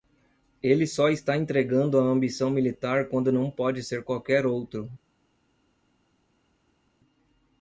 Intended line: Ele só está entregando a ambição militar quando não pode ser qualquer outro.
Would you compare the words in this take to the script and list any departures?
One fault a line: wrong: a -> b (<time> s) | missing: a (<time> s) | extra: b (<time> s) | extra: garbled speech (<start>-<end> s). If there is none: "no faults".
no faults